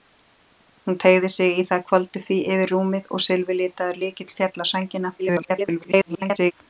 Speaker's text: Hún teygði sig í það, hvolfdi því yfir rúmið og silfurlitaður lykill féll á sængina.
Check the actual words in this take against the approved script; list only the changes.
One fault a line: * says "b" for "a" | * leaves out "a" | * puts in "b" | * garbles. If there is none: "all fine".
* garbles